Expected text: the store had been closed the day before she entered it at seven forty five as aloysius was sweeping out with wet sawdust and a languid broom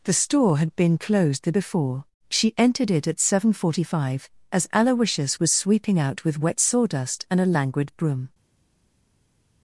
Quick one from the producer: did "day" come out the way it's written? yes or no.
no